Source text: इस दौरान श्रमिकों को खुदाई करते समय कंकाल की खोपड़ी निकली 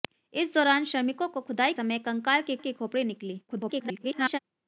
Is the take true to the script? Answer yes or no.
no